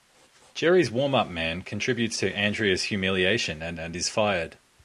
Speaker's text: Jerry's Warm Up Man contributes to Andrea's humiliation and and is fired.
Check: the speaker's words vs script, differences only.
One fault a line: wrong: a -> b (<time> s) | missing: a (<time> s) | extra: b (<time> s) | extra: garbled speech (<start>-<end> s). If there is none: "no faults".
no faults